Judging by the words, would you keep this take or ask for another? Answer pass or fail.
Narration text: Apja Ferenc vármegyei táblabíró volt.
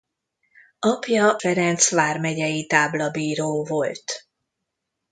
pass